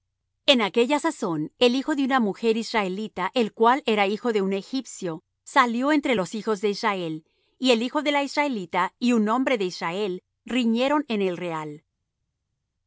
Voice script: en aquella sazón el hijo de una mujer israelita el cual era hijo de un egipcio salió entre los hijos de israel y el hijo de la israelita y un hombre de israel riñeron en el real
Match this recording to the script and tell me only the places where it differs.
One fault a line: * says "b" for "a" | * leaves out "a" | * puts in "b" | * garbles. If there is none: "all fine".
all fine